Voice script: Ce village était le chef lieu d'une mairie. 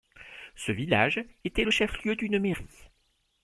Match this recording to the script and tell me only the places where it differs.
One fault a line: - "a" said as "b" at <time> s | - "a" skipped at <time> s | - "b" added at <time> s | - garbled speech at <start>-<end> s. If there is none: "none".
none